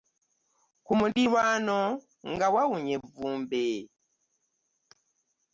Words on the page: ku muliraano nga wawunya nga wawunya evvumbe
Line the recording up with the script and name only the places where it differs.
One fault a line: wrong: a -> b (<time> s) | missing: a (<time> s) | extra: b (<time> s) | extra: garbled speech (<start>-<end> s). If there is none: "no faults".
missing: nga wawunya (2.9 s)